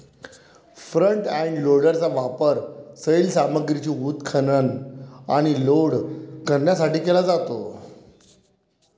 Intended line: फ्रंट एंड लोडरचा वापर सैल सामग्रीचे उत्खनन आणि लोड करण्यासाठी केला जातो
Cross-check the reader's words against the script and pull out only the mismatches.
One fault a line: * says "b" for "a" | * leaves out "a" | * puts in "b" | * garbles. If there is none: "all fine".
all fine